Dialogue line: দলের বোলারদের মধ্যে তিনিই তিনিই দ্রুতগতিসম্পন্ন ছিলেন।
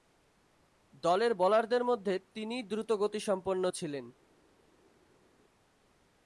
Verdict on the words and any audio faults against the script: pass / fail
fail